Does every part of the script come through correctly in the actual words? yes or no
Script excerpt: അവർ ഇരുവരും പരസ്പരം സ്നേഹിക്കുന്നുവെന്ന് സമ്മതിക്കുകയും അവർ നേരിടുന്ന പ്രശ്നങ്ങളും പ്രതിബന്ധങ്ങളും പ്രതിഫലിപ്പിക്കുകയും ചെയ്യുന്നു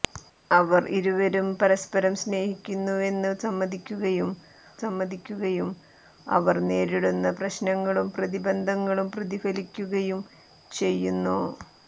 no